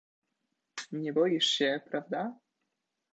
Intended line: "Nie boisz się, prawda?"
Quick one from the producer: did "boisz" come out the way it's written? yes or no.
yes